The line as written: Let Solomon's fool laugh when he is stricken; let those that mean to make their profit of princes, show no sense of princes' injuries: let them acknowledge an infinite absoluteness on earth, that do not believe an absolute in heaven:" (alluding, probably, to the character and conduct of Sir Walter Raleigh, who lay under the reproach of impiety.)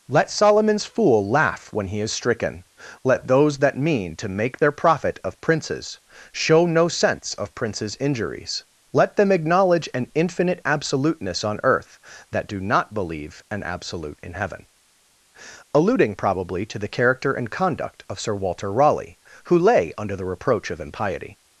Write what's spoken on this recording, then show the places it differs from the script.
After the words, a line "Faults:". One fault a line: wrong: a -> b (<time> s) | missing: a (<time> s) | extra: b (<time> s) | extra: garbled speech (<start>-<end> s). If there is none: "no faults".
Let Solomon's fool laugh when he is stricken; let those that mean to make their profit of princes, show no sense of princes' injuries: let them acknowledge an infinite absoluteness on earth, that do not believe an absolute in heaven:" (alluding, probably, to the character and conduct of Sir Walter Raleigh, who lay under the reproach of impiety.)
Faults:
no faults